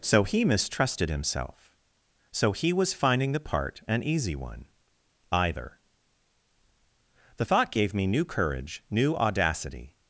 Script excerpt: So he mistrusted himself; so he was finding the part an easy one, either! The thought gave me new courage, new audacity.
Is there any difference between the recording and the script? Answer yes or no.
no